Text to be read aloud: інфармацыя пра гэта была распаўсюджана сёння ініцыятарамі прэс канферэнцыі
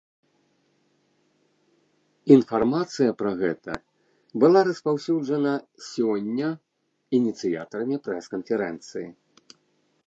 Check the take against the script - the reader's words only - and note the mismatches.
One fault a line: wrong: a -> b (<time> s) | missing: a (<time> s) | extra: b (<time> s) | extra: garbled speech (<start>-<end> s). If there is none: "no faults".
no faults